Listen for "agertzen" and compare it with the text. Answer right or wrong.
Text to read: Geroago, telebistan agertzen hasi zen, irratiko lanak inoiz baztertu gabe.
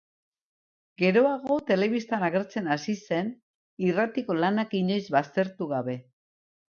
right